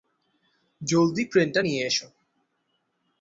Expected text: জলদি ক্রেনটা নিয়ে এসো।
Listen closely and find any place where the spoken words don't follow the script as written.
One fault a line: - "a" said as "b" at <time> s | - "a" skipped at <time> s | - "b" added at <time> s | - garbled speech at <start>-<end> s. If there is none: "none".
none